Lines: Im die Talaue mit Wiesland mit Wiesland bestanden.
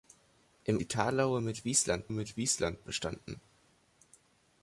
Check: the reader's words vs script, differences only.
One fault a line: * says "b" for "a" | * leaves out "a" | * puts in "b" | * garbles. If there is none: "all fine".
all fine